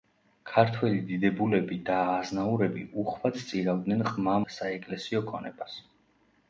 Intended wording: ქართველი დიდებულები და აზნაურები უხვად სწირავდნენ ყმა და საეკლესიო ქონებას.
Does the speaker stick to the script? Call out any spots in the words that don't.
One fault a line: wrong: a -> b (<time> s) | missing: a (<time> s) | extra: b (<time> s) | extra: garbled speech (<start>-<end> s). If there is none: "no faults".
no faults